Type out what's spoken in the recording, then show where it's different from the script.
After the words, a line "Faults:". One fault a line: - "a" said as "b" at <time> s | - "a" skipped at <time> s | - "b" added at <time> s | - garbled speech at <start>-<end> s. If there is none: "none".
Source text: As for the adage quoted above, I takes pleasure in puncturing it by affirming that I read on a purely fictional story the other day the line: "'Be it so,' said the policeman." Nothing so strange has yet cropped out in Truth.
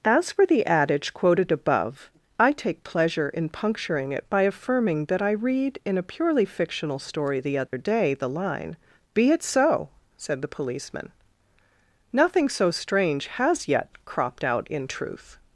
As for the adage quoted above, I take pleasure in puncturing it by affirming that I read in a purely fictional story the other day the line: "'Be it so,' said the policeman." Nothing so strange has yet cropped out in Truth.
Faults:
- "takes" said as "take" at 2.5 s
- "on" said as "in" at 5.8 s